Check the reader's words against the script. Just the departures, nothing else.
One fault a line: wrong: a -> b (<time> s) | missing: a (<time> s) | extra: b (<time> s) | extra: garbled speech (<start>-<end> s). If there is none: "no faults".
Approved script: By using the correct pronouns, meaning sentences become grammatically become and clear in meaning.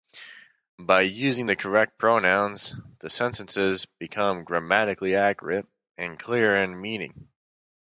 wrong: meaning -> the (3.0 s)
wrong: become -> accurate (5.1 s)